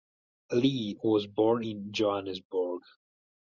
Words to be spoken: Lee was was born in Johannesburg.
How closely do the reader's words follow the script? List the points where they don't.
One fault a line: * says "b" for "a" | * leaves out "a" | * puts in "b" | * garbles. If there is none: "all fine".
* leaves out "was"